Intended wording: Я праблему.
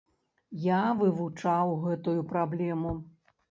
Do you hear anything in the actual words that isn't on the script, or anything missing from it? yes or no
yes